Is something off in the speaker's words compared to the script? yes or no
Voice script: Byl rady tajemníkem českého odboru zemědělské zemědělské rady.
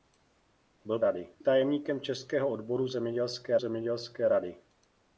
no